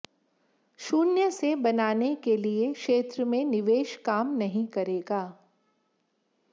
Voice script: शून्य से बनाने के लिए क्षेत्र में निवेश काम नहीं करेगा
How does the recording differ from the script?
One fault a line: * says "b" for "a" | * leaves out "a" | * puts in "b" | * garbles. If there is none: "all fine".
all fine